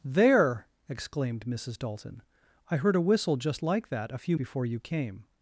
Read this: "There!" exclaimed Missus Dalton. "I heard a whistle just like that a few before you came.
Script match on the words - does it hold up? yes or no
yes